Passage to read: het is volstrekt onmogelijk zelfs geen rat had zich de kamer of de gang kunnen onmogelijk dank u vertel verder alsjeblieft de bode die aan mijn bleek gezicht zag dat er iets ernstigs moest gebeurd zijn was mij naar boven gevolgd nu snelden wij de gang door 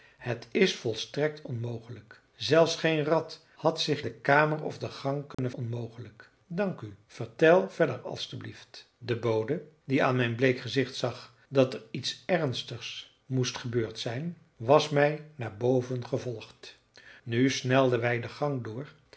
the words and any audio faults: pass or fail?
fail